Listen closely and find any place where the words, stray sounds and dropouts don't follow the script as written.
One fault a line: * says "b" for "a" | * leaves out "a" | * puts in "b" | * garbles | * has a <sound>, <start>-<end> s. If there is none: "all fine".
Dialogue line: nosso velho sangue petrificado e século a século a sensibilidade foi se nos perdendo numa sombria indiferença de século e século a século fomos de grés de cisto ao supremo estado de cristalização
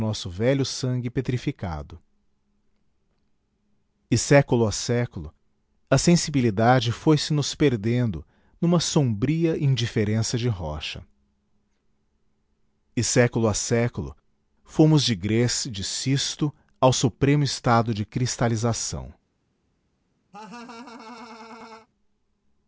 * says "rocha" for "século"
* has a laugh, 20.3-21.9 s